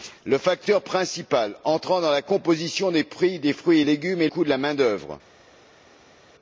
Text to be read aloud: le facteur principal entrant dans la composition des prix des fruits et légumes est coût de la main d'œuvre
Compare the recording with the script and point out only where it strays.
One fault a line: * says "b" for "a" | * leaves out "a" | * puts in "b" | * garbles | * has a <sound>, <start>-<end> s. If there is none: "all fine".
all fine